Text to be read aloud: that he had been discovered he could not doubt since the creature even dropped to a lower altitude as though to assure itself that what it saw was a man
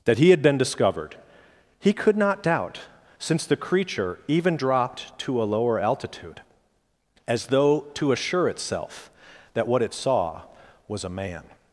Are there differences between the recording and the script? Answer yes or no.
no